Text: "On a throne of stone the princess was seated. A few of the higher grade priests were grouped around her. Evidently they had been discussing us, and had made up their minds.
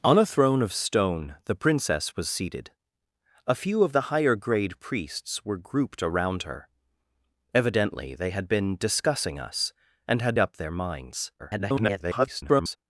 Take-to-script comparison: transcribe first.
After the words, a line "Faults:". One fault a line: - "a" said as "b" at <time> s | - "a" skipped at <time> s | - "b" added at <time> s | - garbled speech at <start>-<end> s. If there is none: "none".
"On a throne of stone the princess was seated. A few of the higher grade priests were grouped around her. Evidently they had been discussing us, and had up their minds. [garbled]
Faults:
- "made" skipped at 10.4 s
- garbled speech at 11.4-12.8 s